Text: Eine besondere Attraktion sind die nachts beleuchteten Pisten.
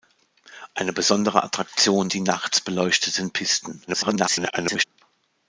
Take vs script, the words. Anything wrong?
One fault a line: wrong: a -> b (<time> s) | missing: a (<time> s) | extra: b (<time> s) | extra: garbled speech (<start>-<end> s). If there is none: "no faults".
missing: sind (2.1 s)
extra: garbled speech (3.9-4.8 s)